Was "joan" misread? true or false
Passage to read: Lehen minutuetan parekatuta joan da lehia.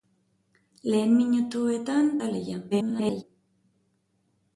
true